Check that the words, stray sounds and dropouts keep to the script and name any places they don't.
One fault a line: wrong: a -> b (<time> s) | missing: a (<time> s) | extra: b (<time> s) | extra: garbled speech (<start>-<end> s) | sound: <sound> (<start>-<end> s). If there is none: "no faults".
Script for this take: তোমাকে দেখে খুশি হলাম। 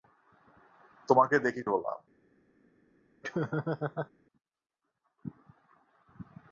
missing: খুশি (1.6 s)
sound: laugh (3.2-4.1 s)